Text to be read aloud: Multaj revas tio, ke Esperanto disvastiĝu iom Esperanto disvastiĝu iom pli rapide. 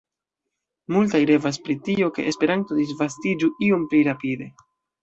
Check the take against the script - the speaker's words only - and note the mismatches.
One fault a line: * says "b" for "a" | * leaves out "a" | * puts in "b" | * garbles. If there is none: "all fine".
* puts in "pri"
* leaves out "Esperanto disvastiĝu iom"